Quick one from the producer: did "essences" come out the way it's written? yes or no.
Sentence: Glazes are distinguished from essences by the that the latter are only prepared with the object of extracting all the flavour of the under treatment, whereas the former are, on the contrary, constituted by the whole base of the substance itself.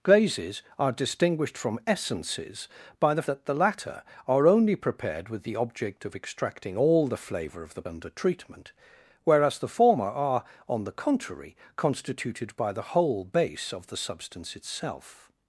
yes